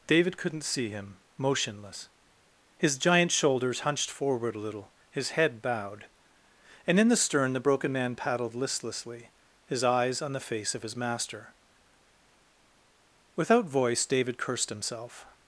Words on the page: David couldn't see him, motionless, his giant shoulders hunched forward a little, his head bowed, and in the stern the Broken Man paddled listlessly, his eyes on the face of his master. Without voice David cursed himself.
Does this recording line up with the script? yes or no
yes